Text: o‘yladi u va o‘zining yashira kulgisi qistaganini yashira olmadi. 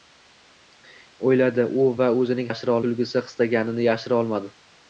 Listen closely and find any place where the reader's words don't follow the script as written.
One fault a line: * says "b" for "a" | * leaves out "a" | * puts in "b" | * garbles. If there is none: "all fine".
all fine